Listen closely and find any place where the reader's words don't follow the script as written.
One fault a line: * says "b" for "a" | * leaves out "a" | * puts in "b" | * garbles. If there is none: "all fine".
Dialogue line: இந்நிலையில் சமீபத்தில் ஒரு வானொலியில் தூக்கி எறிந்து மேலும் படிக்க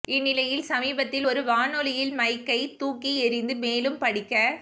* puts in "மைக்கை"